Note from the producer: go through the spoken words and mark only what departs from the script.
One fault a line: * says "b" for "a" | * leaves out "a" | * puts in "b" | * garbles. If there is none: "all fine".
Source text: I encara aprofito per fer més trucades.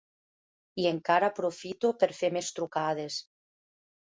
all fine